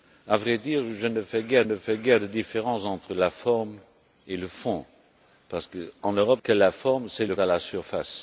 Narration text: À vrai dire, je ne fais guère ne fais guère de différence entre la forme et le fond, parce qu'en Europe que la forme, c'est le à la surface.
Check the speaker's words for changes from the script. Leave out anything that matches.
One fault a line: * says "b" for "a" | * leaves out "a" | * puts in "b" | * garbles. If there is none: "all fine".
all fine